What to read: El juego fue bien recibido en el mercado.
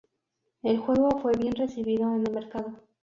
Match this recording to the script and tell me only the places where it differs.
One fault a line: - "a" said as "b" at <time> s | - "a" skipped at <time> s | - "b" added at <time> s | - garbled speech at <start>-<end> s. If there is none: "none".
none